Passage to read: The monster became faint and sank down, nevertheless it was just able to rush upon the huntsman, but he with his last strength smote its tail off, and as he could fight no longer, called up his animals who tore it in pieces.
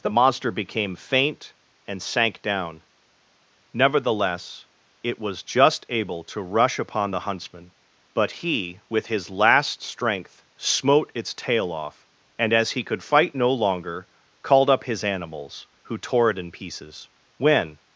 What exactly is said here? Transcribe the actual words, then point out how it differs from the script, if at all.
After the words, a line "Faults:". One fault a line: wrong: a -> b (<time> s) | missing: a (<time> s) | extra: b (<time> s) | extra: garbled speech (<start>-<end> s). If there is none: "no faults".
The monster became faint and sank down, nevertheless it was just able to rush upon the huntsman, but he with his last strength smote its tail off, and as he could fight no longer, called up his animals who tore it in pieces. When
Faults:
extra: When (17.4 s)